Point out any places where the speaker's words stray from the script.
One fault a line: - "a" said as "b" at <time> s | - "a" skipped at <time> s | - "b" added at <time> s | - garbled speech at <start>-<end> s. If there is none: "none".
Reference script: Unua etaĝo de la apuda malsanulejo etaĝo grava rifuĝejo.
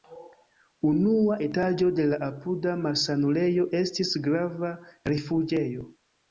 - "etaĝo" said as "estis" at 3.8 s